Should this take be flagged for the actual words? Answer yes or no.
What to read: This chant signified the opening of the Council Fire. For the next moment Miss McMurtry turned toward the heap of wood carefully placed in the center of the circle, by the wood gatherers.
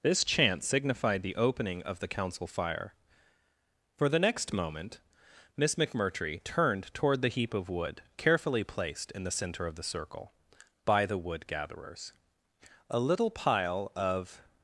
yes